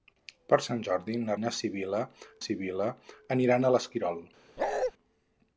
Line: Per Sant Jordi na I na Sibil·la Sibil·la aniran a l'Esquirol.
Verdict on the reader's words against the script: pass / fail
pass